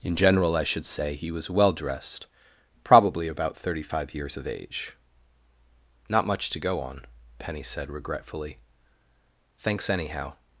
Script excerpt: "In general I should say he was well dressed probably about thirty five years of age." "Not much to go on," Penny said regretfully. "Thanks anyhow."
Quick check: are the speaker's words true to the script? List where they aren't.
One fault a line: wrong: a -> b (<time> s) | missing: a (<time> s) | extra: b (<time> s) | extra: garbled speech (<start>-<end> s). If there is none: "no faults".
no faults